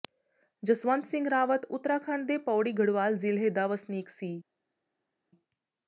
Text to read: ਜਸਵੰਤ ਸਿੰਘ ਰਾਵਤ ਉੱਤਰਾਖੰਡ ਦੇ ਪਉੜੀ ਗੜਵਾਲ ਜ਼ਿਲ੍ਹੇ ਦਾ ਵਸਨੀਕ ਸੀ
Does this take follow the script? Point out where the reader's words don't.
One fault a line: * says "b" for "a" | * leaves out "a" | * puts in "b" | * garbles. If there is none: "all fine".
all fine